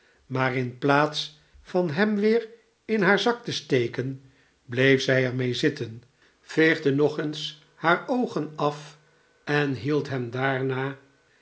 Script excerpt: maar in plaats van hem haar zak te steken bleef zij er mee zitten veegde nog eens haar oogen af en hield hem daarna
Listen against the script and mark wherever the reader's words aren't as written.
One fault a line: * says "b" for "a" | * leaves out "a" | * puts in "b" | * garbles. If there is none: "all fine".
* puts in "weer in"